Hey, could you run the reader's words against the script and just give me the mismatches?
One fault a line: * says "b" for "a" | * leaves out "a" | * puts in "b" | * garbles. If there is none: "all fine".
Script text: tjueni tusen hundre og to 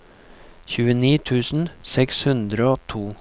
* puts in "seks"